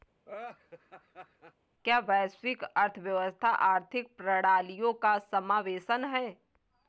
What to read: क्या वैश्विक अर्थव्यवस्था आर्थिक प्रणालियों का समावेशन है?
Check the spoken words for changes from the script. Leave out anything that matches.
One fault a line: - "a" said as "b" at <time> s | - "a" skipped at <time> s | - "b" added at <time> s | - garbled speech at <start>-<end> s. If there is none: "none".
none